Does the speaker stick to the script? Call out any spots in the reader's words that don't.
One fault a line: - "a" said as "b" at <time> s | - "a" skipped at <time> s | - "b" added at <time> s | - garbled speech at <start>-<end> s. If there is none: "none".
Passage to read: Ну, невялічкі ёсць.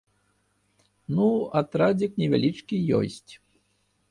- "атрадзік" added at 1.6 s